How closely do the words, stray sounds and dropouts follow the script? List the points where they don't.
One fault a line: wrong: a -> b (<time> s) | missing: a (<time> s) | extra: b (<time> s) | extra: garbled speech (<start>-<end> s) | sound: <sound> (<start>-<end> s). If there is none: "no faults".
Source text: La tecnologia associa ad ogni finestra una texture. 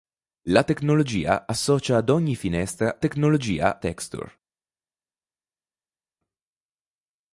wrong: una -> tecnologia (3.0 s)